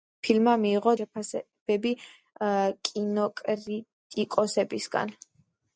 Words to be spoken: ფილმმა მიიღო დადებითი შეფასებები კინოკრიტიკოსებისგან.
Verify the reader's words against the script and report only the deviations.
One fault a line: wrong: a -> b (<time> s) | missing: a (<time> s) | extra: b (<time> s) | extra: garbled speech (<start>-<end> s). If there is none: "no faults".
missing: დადებითი (0.9 s)